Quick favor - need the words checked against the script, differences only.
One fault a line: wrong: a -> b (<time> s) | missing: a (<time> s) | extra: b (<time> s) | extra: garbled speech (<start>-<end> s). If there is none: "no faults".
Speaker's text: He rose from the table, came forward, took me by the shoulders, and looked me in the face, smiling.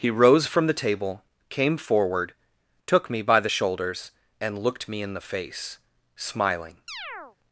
no faults